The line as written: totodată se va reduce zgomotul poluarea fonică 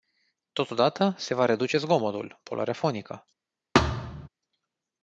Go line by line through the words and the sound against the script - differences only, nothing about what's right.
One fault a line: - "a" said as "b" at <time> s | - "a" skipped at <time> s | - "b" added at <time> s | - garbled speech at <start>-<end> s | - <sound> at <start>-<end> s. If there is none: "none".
- thud at 3.7-4.3 s